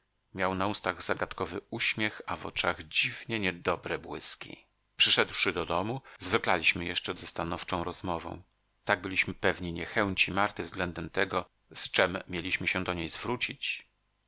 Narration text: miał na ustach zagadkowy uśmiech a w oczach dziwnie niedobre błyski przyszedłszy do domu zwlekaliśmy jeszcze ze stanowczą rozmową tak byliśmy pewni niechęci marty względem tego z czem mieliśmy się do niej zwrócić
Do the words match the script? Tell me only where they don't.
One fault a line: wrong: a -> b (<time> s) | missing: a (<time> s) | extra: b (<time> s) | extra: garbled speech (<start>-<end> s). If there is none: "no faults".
no faults